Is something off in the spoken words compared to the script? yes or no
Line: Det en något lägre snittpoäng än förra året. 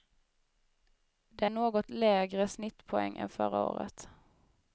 no